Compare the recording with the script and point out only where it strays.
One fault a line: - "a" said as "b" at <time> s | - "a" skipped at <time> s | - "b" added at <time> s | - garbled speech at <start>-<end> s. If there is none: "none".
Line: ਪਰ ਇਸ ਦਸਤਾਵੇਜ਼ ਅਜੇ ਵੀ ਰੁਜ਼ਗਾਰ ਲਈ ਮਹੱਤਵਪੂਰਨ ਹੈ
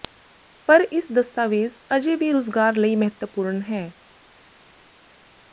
none